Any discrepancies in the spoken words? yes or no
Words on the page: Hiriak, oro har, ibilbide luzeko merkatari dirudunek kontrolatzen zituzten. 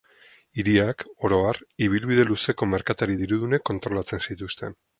no